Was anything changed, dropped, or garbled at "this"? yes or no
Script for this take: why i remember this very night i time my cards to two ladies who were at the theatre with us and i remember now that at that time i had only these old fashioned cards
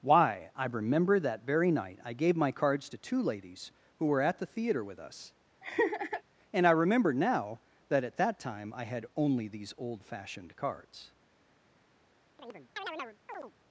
yes